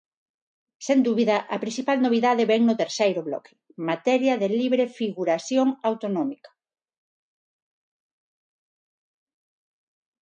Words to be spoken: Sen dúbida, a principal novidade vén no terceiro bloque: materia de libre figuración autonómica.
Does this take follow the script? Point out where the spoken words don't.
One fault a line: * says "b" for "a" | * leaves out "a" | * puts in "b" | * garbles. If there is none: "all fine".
all fine